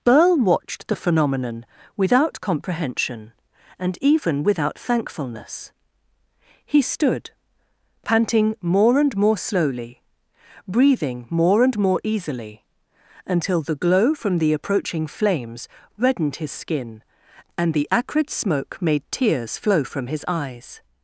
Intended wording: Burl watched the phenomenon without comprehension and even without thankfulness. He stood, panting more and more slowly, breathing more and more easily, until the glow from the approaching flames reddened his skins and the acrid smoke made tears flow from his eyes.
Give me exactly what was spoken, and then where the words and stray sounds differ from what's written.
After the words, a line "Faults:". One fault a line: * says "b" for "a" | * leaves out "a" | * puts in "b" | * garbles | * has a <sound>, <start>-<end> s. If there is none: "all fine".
Burl watched the phenomenon without comprehension and even without thankfulness. He stood, panting more and more slowly, breathing more and more easily, until the glow from the approaching flames reddened his skin and the acrid smoke made tears flow from his eyes.
Faults:
* says "skin" for "skins"